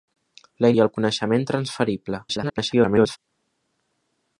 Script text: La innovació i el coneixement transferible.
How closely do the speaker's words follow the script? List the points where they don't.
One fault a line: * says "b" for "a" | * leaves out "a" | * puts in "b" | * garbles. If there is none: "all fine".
* leaves out "innovació"
* garbles